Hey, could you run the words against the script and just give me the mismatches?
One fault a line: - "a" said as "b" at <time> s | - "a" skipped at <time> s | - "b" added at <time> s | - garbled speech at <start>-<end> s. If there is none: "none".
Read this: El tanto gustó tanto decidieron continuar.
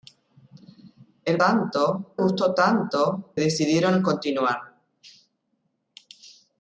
none